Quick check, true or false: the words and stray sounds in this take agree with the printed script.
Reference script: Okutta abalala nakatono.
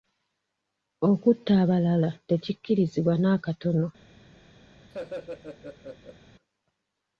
false